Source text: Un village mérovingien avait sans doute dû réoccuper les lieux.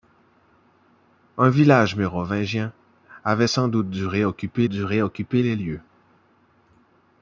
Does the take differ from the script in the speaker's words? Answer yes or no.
yes